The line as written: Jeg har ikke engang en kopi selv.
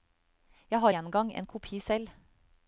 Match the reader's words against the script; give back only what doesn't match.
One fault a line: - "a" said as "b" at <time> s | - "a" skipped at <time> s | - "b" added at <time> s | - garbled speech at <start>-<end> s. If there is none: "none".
- "ikke" skipped at 0.9 s